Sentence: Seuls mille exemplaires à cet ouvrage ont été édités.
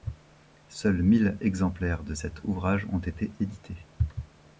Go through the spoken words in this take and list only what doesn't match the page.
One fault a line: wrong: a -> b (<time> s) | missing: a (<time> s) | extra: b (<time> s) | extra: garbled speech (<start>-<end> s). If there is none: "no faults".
wrong: à -> de (2.0 s)